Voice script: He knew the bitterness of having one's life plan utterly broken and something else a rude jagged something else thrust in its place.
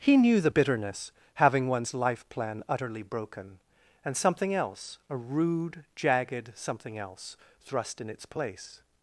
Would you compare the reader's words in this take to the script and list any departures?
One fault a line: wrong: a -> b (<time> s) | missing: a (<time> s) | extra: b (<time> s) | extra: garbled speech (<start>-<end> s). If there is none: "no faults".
missing: of (1.1 s)